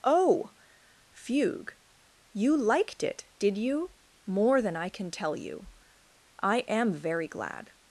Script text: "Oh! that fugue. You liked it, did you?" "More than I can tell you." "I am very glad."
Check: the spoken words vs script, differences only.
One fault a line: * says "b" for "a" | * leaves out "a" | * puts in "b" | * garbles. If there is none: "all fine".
* leaves out "that"